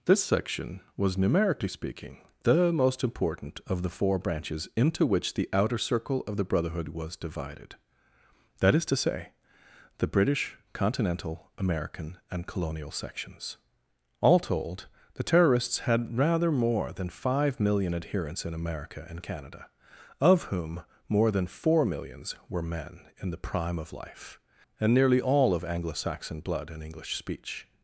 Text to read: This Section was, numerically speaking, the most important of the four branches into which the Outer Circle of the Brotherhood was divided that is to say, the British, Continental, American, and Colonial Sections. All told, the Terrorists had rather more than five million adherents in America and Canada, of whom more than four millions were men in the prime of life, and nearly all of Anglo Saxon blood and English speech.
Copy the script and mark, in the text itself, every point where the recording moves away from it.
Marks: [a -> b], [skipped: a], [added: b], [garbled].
This Section was, numerically speaking, the most important of the four branches into which the Outer Circle of the Brotherhood was divided that is to say, the British, Continental, American, and Colonial Sections. All told, the Terrorists had rather more than five million adherents in America and Canada, of whom more than four millions were men in the prime of life, and nearly all of Anglo Saxon blood and English speech.